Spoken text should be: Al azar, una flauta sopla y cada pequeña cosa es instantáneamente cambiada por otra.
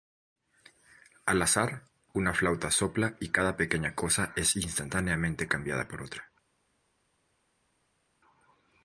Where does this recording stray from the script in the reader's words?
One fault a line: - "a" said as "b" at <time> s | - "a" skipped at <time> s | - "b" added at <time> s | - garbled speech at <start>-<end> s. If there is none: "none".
none